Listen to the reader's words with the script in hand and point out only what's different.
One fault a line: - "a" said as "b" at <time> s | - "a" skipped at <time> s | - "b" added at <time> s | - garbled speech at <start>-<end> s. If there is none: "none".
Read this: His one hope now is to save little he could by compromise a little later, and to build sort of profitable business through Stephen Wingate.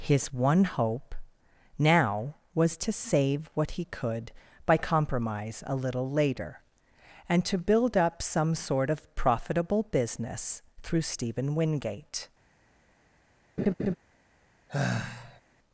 - "is" said as "was" at 2.5 s
- "little" said as "what" at 3.5 s
- "up some" added at 8.0 s